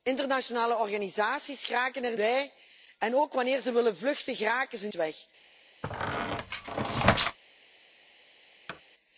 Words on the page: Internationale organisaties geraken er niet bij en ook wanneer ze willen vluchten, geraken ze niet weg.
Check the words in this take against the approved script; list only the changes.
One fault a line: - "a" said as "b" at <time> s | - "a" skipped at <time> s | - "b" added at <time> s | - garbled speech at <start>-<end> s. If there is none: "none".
- "niet" skipped at 2.2 s
- "niet" skipped at 4.9 s